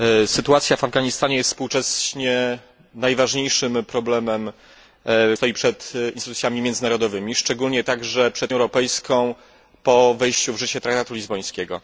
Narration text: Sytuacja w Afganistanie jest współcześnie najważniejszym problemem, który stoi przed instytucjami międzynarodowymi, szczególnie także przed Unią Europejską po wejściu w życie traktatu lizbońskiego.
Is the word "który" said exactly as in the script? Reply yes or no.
no